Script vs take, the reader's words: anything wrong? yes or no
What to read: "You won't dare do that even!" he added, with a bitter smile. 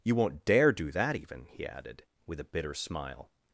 no